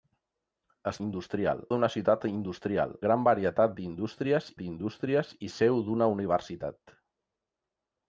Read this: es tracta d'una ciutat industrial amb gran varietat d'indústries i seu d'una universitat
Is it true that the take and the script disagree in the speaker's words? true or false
true